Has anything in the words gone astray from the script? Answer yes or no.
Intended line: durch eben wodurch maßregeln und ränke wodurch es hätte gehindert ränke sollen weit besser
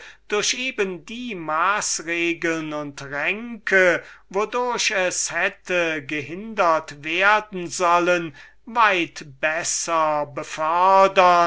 yes